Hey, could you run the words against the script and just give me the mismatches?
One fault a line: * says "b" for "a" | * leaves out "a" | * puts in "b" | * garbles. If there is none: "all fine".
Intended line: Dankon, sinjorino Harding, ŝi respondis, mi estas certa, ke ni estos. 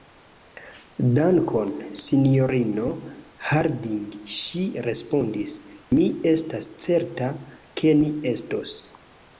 all fine